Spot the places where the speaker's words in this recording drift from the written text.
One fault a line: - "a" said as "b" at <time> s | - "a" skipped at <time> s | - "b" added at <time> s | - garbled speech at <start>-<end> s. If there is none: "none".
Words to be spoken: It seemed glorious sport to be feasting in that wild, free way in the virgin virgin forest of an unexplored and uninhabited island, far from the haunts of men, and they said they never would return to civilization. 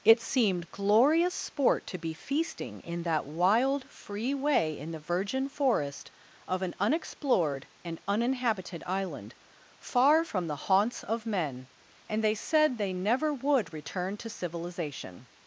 - "virgin" skipped at 5.5 s